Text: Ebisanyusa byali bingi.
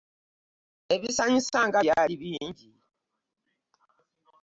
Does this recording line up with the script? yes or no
no